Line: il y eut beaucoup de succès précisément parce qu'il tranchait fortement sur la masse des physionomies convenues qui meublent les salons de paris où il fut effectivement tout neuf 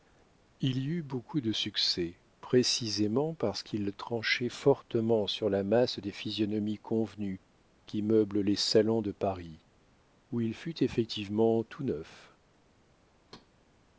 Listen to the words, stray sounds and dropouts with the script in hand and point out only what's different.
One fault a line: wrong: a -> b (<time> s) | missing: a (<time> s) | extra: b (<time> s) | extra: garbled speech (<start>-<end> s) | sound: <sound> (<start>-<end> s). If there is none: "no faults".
sound: thud (13.3-13.5 s)